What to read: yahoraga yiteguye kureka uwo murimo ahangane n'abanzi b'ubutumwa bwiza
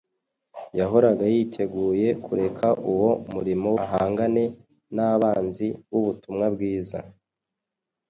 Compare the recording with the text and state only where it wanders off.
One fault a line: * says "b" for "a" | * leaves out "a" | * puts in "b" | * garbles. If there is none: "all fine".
all fine